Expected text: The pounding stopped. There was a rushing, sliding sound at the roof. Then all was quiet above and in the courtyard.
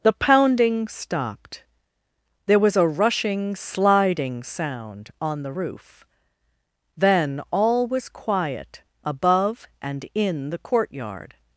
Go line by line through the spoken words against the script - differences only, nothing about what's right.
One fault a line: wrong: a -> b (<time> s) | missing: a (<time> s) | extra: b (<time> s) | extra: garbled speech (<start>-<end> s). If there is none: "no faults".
wrong: at -> on (5.2 s)